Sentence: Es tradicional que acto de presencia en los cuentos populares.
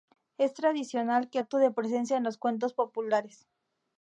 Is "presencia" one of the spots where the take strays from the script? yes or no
no